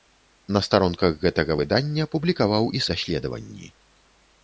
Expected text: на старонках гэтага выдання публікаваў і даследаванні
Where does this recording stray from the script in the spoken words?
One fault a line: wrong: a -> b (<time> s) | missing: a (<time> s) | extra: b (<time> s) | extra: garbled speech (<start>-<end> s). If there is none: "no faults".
no faults